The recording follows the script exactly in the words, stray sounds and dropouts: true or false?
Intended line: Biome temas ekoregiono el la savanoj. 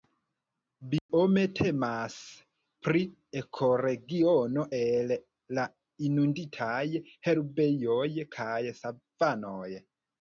false